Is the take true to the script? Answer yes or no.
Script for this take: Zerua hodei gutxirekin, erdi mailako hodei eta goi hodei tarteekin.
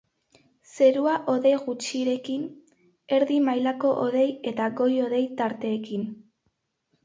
yes